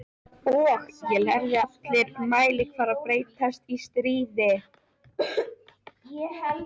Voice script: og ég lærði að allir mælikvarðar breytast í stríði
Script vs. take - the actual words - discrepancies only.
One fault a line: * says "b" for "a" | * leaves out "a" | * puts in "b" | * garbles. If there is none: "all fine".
* leaves out "að"